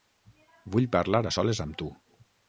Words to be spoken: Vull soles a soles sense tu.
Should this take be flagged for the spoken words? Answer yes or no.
yes